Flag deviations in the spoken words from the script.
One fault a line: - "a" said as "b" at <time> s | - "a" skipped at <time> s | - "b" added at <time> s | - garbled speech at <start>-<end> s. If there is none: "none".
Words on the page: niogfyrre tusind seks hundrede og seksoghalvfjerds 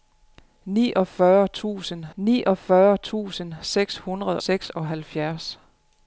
- "niogfyrre tusind" added at 2.2 s
- "og" skipped at 4.4 s